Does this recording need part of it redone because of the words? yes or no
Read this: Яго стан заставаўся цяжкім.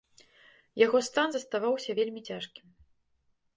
yes